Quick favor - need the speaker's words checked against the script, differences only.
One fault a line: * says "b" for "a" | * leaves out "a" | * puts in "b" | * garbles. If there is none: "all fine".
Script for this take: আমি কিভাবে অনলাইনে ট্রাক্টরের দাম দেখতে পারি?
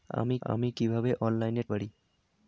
* puts in "আমি"
* leaves out "ট্রাক্টরের দাম দেখতে"